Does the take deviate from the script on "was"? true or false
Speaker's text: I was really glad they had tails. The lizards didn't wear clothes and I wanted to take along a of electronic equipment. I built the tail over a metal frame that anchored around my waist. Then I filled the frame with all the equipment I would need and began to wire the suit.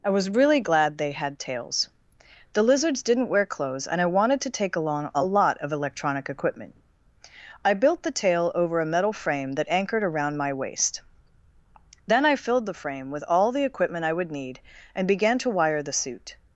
false